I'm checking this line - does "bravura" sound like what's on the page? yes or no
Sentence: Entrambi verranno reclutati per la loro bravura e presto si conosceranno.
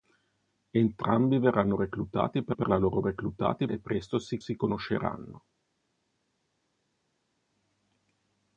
no